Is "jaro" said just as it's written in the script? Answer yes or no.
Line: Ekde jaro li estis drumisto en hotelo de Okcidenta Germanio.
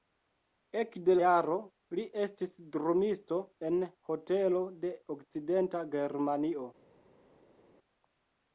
yes